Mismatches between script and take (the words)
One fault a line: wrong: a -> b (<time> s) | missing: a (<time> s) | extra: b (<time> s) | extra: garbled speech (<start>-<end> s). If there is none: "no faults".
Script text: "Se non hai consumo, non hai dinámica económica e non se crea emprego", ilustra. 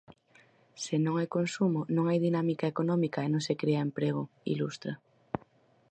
no faults